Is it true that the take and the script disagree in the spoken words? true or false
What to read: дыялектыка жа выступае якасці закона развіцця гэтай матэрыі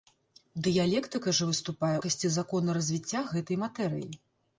false